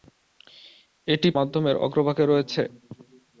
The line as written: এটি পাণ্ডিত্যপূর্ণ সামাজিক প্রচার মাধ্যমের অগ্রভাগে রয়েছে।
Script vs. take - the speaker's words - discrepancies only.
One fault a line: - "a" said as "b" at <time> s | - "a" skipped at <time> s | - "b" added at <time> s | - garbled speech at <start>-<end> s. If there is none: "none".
- "পাণ্ডিত্যপূর্ণ সামাজিক প্রচার" skipped at 1.3 s